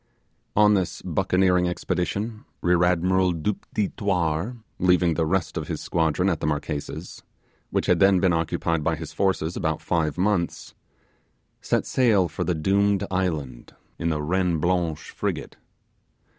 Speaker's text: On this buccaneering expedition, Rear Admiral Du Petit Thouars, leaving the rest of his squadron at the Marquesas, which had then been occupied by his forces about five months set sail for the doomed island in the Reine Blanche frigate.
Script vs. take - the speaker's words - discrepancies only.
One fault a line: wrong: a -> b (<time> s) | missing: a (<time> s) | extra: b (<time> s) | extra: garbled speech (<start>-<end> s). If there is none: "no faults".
no faults